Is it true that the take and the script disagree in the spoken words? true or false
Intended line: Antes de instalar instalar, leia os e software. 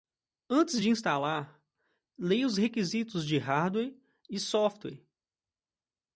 true